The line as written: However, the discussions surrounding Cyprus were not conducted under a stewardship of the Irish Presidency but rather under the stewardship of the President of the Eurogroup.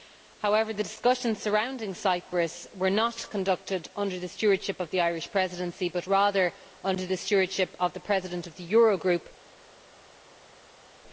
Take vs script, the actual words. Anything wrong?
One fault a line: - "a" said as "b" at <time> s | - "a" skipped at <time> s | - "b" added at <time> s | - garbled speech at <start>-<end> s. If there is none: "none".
- "a" said as "the" at 4.2 s